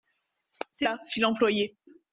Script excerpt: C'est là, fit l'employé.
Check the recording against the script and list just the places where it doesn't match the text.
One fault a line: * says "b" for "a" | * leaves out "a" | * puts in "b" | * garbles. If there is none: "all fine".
all fine